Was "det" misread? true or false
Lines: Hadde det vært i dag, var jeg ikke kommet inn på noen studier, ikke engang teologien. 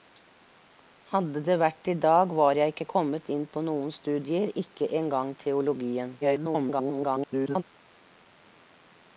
false